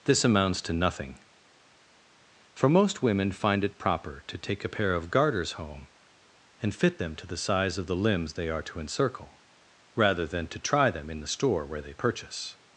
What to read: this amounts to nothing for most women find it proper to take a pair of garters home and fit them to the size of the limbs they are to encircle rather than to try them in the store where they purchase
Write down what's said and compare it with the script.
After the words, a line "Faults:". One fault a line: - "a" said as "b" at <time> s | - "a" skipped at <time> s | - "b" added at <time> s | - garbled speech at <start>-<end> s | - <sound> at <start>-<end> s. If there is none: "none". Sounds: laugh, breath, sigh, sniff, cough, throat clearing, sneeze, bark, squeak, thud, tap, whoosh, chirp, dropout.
this amounts to nothing for most women find it proper to take a pair of garters home and fit them to the size of the limbs they are to encircle rather than to try them in the store where they purchase
Faults:
none